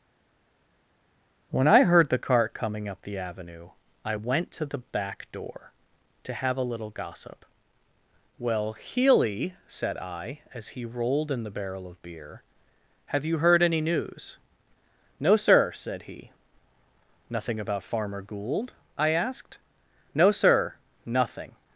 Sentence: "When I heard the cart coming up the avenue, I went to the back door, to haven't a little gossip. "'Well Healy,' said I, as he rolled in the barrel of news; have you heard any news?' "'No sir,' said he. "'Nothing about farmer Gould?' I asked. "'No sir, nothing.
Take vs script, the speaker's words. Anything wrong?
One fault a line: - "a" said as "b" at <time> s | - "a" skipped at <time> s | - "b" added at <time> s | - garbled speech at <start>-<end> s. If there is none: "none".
- "haven't" said as "have" at 6.3 s
- "news" said as "beer" at 12.0 s